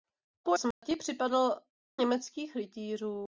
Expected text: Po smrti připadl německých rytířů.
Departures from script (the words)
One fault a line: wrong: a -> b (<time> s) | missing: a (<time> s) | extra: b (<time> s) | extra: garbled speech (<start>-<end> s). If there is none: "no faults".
no faults